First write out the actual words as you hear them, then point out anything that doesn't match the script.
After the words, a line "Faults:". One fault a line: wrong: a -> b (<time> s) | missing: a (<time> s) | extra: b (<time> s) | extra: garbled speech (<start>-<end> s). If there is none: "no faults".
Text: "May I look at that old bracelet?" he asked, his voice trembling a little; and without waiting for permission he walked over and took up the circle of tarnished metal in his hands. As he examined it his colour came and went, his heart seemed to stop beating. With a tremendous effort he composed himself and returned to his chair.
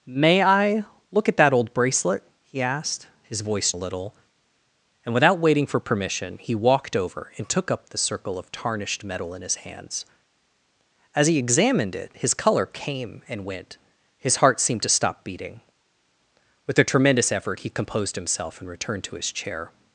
"May I look at that old bracelet?" he asked, his voice a little; and without waiting for permission he walked over and took up the circle of tarnished metal in his hands. As he examined it his colour came and went, his heart seemed to stop beating. With a tremendous effort he composed himself and returned to his chair.
Faults:
missing: trembling (3.7 s)